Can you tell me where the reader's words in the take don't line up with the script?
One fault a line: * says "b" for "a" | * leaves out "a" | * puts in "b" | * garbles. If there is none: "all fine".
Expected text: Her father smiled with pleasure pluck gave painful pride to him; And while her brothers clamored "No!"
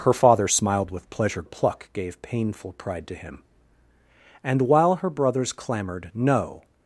all fine